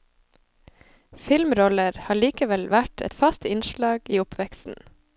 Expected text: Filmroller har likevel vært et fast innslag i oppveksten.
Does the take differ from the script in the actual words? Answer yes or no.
no